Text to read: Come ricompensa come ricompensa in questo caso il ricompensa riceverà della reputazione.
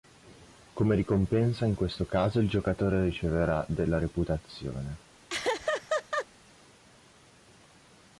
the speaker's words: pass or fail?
fail